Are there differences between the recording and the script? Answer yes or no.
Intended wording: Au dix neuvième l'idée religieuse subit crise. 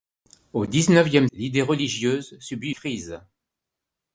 no